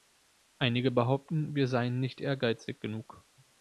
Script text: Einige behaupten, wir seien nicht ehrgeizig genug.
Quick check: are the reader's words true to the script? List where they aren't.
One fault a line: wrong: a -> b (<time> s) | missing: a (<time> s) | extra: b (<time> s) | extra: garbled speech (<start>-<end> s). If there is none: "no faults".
no faults